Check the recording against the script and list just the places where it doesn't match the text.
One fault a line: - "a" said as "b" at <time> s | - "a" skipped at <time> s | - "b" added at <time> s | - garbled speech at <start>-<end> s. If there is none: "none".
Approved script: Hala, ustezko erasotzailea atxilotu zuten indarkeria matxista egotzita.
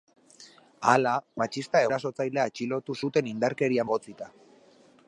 - "ustezko" said as "matxista" at 1.4 s
- "matxista" skipped at 3.9 s